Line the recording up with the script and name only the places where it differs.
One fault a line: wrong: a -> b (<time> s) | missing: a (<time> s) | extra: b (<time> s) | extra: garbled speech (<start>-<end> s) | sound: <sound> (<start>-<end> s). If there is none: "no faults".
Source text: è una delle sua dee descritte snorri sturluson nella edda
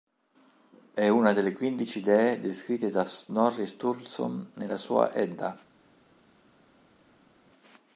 wrong: sua -> quindici (1.5 s)
extra: da (2.9 s)
extra: sua (4.8 s)